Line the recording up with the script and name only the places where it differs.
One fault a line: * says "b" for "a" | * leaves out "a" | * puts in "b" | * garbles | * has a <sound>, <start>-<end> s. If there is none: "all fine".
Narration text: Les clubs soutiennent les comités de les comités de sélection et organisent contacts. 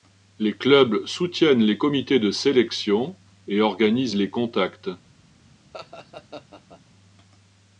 * leaves out "les comités de"
* puts in "les"
* has a laugh, 5.7-6.8 s